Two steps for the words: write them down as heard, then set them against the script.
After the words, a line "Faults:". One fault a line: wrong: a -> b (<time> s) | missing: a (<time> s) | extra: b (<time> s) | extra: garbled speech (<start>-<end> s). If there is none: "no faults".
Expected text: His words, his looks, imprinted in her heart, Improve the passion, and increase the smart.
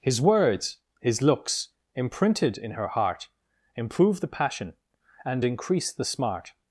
His words, his looks, imprinted in her heart, Improve the passion, and increase the smart.
Faults:
no faults